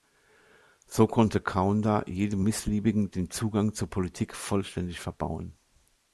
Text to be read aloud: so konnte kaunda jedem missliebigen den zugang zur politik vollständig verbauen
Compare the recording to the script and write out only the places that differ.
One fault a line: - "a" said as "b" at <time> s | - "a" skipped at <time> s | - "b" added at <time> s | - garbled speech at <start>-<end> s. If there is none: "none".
none